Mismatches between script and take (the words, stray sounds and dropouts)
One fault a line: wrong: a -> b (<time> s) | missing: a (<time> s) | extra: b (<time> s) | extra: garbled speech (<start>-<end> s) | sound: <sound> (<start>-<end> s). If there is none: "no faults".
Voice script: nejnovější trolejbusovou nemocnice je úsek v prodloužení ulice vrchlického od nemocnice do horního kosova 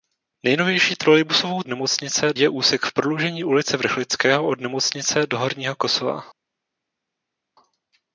no faults